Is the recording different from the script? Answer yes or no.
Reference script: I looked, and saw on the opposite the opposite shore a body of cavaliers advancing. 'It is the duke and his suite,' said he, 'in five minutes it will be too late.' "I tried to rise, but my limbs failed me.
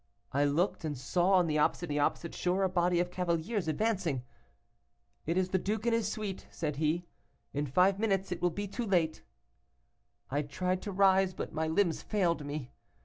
no